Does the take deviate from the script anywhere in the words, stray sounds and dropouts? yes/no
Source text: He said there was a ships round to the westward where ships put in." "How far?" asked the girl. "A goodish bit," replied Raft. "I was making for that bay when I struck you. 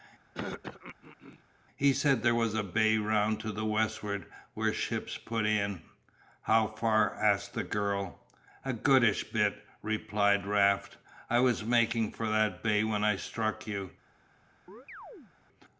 yes